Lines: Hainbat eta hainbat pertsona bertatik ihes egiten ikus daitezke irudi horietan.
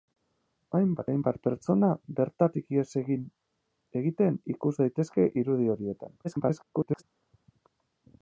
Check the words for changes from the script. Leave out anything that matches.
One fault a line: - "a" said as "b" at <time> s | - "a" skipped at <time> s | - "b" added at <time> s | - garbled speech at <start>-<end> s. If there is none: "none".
- "eta" skipped at 1.1 s
- garbled speech at 6.2-7.0 s